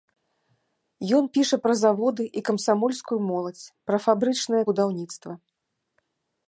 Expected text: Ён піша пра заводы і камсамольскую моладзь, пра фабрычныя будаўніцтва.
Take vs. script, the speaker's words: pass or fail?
pass